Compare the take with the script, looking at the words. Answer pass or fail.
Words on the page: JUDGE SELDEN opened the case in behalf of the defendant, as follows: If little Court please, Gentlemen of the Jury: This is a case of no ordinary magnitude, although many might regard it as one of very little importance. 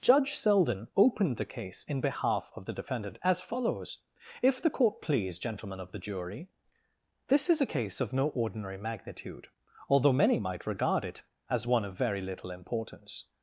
fail